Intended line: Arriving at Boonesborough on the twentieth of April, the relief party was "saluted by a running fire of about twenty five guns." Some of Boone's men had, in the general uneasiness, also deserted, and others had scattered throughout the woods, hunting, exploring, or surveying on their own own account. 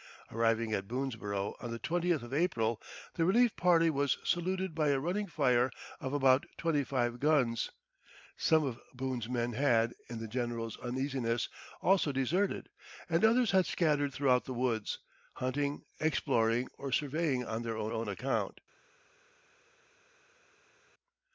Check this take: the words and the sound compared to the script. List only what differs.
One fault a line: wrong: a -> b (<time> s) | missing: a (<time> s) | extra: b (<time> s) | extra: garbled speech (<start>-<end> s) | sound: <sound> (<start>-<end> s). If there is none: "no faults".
no faults